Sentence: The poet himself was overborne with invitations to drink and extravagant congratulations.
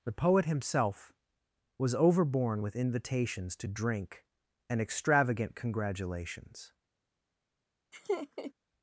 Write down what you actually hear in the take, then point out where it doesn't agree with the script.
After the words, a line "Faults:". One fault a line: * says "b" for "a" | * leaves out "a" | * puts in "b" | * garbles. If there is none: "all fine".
The poet himself was overborne with invitations to drink and extravagant congratulations.
Faults:
all fine